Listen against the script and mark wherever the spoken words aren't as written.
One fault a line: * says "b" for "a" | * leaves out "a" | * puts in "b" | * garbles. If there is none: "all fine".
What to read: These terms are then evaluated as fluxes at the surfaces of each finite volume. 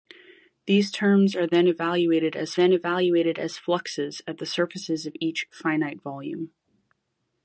* puts in "then evaluated as"